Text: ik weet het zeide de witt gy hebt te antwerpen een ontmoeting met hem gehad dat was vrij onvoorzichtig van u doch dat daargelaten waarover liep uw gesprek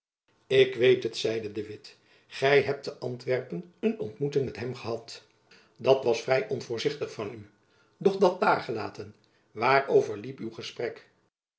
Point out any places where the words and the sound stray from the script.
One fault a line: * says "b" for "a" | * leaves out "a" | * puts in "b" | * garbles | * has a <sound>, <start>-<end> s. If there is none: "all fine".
all fine